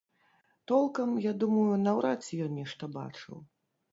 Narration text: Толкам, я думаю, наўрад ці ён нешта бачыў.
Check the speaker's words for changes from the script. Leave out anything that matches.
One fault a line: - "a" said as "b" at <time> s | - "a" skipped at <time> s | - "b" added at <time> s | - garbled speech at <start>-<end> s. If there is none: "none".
none